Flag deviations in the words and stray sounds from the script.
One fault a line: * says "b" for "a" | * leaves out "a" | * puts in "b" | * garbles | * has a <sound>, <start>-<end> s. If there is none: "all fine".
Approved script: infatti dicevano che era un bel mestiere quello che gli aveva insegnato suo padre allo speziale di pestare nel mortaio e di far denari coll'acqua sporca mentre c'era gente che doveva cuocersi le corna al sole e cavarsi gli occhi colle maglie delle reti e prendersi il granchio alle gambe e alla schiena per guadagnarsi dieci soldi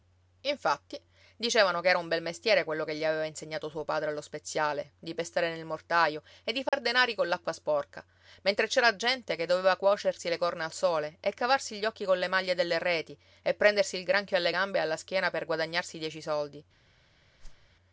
* has a dropout, 6.7-6.7 s
* has a whoosh, 17.4-17.7 s